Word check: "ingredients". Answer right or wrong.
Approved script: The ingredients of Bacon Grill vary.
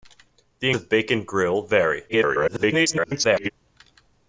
wrong